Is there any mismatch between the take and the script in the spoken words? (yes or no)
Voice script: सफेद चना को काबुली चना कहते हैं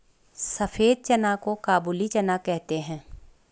no